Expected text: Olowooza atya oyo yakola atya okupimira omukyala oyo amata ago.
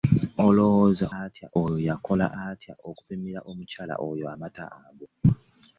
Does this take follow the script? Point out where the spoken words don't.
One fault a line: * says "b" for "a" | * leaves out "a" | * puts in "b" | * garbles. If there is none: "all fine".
all fine